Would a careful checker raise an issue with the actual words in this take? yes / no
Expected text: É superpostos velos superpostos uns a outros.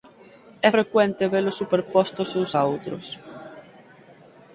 yes